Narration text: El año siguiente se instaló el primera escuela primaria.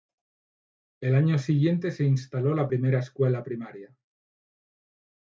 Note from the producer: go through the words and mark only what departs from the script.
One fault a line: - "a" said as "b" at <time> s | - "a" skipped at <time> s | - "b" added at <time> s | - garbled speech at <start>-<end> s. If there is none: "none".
- "el" said as "la" at 2.5 s